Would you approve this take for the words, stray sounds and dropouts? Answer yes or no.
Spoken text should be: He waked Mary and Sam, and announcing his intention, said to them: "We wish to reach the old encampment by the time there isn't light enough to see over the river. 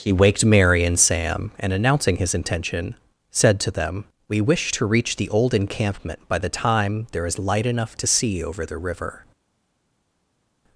no